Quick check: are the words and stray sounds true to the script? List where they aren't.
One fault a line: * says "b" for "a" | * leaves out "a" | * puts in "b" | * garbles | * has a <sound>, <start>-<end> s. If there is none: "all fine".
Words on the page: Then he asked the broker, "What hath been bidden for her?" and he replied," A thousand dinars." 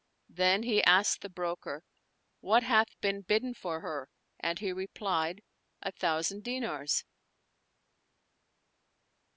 all fine